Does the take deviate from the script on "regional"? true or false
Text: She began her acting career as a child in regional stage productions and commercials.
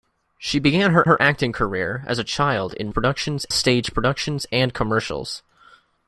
true